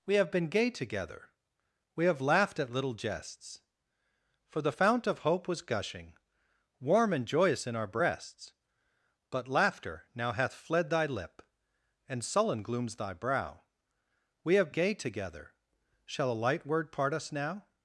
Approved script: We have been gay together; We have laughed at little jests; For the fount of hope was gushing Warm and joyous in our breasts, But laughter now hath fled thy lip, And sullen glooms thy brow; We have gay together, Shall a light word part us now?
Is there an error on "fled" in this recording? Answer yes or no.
no